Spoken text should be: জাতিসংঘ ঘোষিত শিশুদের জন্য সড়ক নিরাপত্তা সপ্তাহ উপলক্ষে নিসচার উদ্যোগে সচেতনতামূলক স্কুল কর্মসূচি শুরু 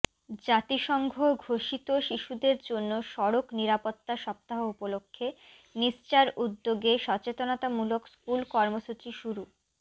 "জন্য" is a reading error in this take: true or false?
false